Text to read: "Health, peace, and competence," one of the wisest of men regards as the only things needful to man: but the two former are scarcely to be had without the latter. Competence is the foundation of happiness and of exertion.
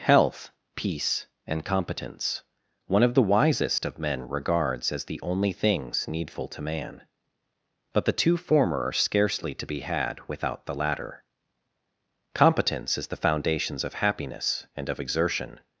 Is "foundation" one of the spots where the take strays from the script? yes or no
yes